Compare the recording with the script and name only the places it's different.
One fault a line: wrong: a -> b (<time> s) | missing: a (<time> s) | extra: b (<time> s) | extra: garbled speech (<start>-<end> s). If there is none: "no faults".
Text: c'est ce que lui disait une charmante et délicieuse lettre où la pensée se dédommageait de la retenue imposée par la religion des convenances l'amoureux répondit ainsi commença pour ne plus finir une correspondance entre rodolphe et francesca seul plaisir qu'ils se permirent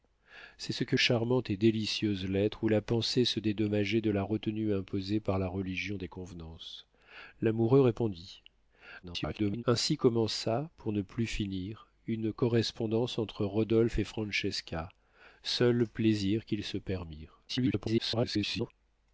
missing: lui disait une (0.9 s)
extra: garbled speech (9.0-9.6 s)
extra: garbled speech (17.5-18.7 s)